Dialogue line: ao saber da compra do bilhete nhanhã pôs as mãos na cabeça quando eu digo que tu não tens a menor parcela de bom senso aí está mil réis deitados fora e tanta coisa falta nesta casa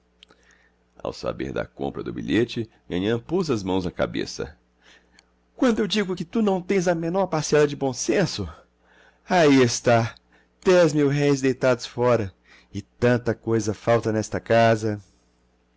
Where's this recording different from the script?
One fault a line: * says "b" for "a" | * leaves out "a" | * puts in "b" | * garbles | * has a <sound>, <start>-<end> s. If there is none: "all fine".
* puts in "dez"